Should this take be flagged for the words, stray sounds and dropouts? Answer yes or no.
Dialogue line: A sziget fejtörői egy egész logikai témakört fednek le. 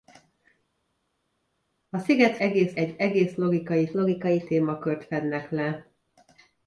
yes